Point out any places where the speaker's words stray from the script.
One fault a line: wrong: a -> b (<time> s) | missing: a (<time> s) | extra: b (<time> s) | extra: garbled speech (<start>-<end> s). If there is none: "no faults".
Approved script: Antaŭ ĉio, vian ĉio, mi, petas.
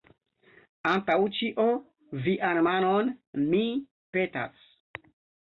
wrong: ĉio -> manon (2.7 s)